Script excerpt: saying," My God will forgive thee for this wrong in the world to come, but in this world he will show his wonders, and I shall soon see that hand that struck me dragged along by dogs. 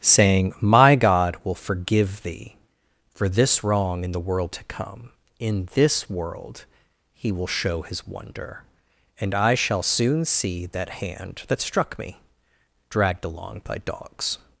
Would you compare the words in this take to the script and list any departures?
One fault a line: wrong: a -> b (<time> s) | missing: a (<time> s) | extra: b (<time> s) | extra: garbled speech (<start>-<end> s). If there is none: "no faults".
missing: but (5.1 s)
wrong: wonders -> wonder (8.1 s)